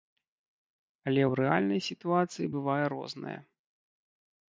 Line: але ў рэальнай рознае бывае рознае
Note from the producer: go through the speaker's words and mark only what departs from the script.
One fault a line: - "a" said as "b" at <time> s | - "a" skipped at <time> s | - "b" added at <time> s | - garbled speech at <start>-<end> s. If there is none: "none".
- "рознае" said as "сітуацыі" at 1.9 s